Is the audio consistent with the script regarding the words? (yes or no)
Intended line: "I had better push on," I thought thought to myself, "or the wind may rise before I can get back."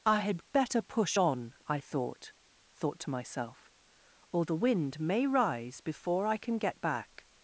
yes